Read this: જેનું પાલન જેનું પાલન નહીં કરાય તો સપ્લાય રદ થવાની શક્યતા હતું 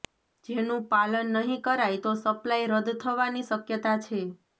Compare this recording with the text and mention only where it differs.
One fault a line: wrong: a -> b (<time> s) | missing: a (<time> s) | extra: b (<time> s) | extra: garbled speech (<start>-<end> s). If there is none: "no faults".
missing: જેનું પાલન (1.3 s)
wrong: હતું -> છે (4.1 s)